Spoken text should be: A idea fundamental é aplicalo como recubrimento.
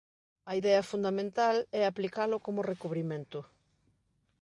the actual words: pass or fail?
pass